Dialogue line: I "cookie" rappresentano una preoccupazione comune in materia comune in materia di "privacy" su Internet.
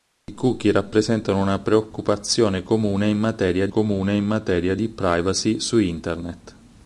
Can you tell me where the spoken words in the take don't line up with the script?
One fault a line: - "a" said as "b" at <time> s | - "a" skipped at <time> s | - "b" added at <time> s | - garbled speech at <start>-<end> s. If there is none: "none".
none